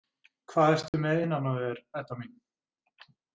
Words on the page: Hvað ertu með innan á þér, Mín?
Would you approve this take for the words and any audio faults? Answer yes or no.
no